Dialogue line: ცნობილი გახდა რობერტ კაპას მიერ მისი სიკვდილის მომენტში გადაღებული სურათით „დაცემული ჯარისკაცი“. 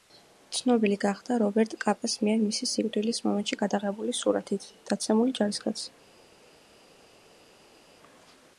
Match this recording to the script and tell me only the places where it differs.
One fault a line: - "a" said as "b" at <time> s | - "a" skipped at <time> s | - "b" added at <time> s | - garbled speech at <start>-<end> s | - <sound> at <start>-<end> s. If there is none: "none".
none